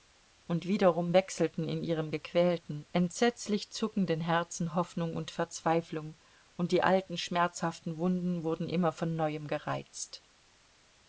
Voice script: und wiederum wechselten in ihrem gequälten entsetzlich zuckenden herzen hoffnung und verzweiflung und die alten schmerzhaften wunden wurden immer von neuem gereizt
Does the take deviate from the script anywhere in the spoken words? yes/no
no